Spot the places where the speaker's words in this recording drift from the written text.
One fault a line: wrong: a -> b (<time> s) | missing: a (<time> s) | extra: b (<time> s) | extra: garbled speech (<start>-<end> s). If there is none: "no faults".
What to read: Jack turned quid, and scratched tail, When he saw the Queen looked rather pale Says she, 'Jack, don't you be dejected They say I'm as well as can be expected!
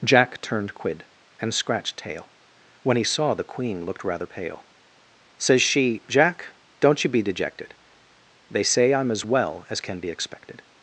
no faults